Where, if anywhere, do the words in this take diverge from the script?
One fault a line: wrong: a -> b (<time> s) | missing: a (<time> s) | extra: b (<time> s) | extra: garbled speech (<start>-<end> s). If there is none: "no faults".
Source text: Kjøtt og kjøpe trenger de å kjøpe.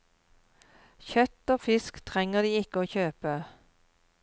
wrong: kjøpe -> fisk (1.6 s)
extra: ikke (2.6 s)